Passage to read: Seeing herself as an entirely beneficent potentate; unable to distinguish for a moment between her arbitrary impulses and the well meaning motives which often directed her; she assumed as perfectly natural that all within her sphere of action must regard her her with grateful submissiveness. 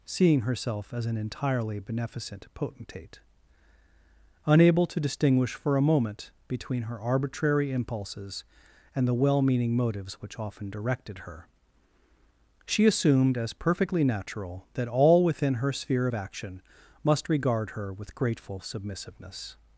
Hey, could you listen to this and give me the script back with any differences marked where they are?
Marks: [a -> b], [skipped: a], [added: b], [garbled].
Seeing herself as an entirely beneficent potentate; unable to distinguish for a moment between her arbitrary impulses and the well meaning motives which often directed her; she assumed as perfectly natural that all within her sphere of action must regard her [skipped: her] with grateful submissiveness.